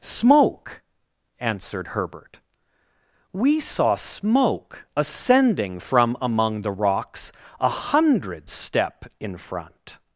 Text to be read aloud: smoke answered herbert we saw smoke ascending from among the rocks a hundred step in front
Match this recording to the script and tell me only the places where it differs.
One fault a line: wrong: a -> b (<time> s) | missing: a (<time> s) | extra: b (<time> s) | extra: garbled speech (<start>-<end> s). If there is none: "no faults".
no faults